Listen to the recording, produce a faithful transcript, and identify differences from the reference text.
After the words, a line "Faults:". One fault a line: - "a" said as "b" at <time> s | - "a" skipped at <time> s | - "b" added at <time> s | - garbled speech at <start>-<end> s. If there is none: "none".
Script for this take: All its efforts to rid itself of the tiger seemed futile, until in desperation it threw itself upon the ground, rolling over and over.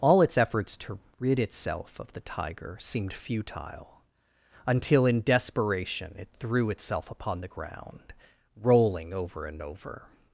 All its efforts to rid itself of the tiger seemed futile, until in desperation it threw itself upon the ground, rolling over and over.
Faults:
none